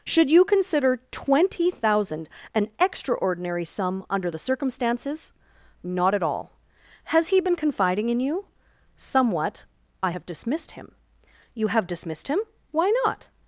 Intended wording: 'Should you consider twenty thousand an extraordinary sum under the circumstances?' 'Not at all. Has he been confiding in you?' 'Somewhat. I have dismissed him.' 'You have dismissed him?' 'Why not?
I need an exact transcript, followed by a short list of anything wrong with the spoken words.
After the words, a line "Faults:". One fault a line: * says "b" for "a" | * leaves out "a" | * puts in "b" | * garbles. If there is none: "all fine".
'Should you consider twenty thousand an extraordinary sum under the circumstances?' 'Not at all. Has he been confiding in you?' 'Somewhat. I have dismissed him.' 'You have dismissed him?' 'Why not?
Faults:
all fine